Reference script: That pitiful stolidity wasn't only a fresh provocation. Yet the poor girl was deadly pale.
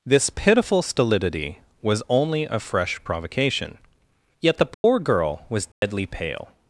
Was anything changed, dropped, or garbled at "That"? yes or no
yes